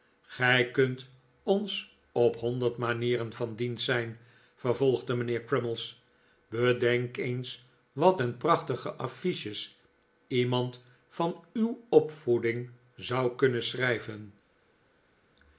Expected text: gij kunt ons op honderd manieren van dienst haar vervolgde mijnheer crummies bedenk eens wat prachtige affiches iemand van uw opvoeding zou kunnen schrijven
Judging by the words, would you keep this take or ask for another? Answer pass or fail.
fail